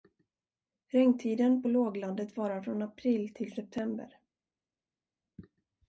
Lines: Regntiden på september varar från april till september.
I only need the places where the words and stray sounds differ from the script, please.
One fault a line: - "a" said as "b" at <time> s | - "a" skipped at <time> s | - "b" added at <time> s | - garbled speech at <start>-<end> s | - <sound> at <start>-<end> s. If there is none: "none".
- "september" said as "låglandet" at 1.7 s